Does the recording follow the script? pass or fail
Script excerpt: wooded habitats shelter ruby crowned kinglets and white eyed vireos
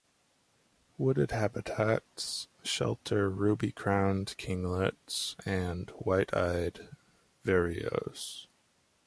pass